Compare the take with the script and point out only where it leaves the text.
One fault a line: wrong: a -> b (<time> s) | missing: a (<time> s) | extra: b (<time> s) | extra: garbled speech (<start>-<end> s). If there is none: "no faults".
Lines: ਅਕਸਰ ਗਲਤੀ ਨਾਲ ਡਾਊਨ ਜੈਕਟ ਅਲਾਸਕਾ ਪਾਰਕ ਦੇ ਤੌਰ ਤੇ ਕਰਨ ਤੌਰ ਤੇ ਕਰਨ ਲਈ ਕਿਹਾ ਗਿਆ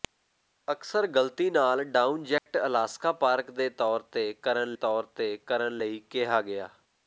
no faults